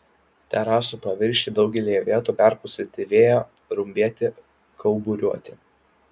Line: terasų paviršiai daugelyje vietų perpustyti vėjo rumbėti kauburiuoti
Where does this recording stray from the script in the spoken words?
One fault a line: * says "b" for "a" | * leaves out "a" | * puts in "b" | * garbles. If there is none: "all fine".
all fine